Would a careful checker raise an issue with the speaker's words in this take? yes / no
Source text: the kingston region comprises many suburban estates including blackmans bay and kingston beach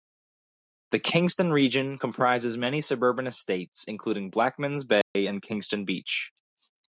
no